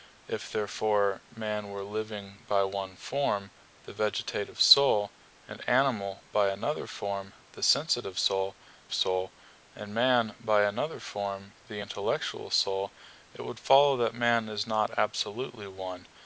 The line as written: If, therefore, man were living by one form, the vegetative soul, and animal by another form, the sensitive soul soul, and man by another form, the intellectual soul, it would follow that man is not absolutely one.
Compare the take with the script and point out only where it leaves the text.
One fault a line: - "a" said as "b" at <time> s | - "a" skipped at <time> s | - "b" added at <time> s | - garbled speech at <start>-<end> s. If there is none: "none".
none